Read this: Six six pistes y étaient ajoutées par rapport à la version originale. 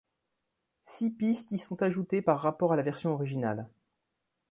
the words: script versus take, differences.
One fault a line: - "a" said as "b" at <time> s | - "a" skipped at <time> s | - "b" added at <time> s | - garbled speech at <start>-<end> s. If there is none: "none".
- "six" skipped at 1.1 s
- "étaient" said as "sont" at 1.6 s